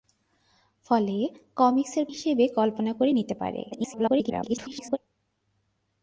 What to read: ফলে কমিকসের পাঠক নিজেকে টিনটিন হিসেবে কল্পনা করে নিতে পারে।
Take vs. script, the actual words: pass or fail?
fail